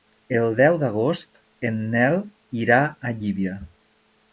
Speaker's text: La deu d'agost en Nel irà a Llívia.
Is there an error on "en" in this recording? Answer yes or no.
no